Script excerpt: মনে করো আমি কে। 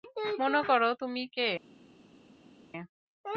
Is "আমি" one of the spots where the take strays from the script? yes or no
yes